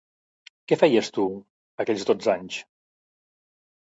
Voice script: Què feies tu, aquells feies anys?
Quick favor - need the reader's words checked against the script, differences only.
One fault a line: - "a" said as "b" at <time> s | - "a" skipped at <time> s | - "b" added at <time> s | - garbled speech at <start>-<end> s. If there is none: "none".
- "feies" said as "dotze" at 2.1 s